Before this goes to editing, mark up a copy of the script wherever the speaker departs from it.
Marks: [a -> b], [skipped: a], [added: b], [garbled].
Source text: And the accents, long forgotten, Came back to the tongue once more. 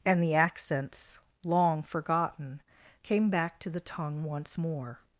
And the accents, long forgotten, Came back to the tongue once more.